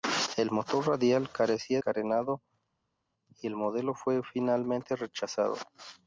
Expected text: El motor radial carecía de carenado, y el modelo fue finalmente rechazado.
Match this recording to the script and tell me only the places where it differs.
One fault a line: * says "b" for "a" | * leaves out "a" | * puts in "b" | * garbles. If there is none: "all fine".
* leaves out "de"